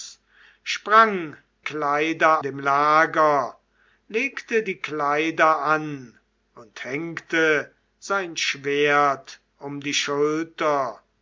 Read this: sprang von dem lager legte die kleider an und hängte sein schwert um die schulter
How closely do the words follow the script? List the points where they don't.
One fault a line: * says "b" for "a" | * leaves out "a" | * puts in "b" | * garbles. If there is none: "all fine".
* says "kleider" for "von"